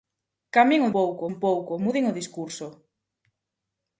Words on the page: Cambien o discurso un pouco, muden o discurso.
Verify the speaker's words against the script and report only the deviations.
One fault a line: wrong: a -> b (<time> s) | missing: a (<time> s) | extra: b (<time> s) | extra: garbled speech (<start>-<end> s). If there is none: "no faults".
wrong: discurso -> pouco (1.0 s)